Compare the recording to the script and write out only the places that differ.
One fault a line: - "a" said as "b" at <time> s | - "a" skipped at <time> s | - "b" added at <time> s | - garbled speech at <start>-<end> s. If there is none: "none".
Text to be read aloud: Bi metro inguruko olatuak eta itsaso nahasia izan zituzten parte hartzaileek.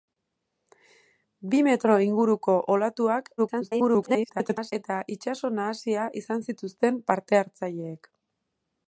- garbled speech at 3.4-4.7 s